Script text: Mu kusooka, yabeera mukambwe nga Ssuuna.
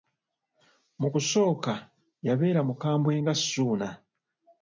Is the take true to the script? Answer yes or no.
yes